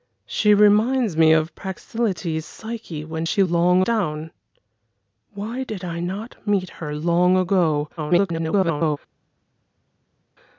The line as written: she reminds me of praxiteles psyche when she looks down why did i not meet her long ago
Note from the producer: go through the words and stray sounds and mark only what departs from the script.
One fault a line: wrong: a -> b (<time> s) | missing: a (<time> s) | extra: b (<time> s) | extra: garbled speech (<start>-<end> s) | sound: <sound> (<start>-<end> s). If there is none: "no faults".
wrong: looks -> long (3.4 s)
extra: garbled speech (8.0-9.0 s)